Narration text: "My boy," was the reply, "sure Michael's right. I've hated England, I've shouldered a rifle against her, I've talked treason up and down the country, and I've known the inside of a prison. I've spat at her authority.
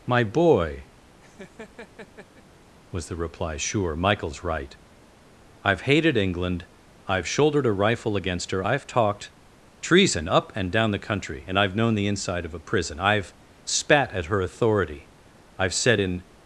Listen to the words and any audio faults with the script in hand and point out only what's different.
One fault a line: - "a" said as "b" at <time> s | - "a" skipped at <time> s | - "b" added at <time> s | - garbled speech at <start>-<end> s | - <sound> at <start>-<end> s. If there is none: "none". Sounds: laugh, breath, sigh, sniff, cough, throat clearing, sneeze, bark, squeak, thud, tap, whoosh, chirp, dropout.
- laugh at 1.2-2.4 s
- "I've said in" added at 15.6 s